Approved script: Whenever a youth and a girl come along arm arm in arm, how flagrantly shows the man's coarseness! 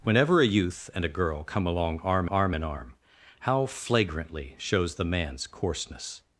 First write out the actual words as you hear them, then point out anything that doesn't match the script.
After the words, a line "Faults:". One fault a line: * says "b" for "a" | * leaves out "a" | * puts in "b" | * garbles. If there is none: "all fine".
Whenever a youth and a girl come along arm arm in arm, how flagrantly shows the man's coarseness!
Faults:
all fine